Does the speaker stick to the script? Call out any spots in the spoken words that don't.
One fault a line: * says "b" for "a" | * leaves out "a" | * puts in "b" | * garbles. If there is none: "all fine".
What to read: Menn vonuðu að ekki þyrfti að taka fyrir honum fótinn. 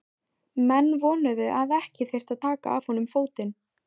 * says "af" for "fyrir"